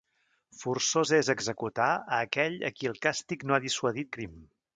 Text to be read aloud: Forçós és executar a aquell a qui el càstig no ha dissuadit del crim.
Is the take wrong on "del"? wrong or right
wrong